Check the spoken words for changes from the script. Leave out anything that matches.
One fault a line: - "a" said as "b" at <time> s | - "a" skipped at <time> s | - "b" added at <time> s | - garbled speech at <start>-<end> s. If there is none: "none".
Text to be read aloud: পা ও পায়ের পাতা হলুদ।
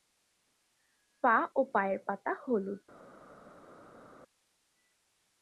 none